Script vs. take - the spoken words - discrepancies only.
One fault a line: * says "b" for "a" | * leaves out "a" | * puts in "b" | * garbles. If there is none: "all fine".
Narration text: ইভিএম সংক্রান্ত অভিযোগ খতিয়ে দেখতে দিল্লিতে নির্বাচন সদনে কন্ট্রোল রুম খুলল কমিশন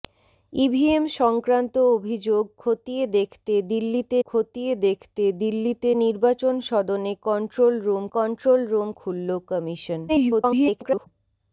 * puts in "খতিয়ে দেখতে দিল্লিতে"
* puts in "কন্ট্রোল রুম"
* garbles